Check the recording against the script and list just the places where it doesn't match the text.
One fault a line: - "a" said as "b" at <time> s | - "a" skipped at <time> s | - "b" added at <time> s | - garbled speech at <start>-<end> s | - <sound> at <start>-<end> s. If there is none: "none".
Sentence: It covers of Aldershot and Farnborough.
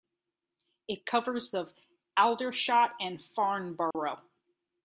- dropout at 3.9-3.9 s